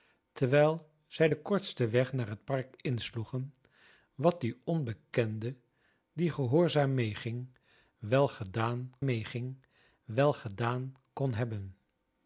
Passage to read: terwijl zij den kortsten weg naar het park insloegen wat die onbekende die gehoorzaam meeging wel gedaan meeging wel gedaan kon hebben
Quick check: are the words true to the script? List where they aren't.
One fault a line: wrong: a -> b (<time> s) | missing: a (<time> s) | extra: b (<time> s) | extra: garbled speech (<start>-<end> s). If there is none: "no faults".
no faults